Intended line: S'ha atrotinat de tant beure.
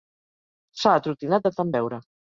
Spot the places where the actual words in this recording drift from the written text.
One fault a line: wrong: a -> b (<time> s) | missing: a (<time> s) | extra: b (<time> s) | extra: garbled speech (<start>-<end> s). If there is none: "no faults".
no faults